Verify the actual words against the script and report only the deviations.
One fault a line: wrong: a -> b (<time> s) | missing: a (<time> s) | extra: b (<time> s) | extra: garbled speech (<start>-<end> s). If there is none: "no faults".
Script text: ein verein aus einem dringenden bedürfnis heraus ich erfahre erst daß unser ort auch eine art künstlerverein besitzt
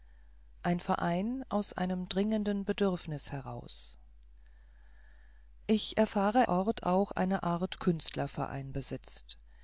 missing: erst daß unser (6.5 s)